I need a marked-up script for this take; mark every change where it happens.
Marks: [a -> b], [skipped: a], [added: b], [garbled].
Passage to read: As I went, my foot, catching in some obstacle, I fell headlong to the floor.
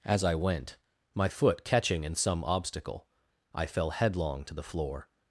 As I went, my foot, catching in some obstacle, I fell headlong to the floor.